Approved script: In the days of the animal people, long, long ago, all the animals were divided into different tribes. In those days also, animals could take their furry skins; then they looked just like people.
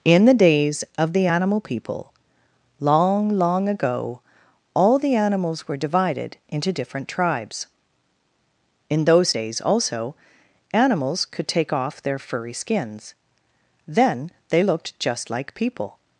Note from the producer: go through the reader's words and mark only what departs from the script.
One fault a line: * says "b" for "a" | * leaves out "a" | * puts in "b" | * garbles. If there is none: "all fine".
* puts in "off"